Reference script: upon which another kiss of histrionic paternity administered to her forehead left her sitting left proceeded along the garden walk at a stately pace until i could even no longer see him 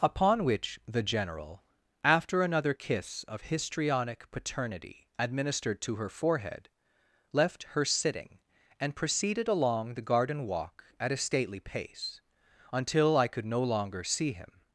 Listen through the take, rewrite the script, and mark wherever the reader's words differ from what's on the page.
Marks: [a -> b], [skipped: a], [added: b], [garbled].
upon which [added: the general after] another kiss of histrionic paternity administered to her forehead left her sitting [left -> and] proceeded along the garden walk at a stately pace until i could [skipped: even] no longer see him